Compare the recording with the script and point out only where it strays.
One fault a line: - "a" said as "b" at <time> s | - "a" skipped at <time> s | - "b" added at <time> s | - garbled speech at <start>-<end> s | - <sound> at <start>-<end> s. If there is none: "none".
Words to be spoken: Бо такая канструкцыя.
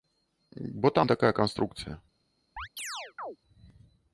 - "там" added at 0.9 s
- chirp at 2.6-3.4 s